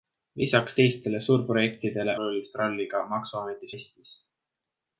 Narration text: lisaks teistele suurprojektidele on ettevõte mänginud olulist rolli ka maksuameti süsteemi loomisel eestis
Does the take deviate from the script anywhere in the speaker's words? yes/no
yes